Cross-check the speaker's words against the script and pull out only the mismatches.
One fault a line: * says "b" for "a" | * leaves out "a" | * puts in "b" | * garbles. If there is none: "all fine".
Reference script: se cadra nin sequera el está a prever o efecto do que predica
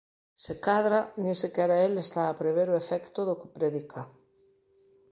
all fine